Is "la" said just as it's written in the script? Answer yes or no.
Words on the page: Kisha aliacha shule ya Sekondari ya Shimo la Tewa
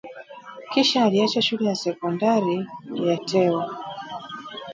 no